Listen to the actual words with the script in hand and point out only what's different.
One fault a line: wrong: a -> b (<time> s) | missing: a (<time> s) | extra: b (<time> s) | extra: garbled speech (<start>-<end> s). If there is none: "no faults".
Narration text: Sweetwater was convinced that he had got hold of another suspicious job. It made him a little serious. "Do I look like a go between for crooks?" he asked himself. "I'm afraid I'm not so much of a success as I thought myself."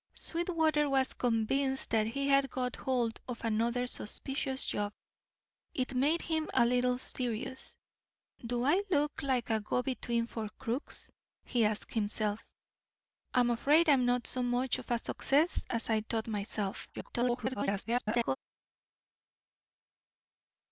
extra: garbled speech (16.9-18.4 s)